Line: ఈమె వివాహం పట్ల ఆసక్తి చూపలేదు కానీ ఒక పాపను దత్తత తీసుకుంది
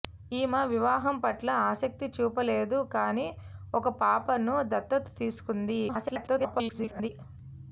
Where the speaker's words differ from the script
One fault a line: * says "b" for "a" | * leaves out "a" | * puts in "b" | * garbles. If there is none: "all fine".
* garbles